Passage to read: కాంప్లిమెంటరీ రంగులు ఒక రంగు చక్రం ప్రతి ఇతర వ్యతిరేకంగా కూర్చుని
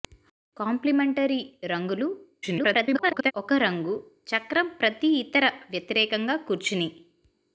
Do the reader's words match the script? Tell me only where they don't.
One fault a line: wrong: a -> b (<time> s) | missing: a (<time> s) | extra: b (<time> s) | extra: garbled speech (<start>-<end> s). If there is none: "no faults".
extra: garbled speech (2.4-3.3 s)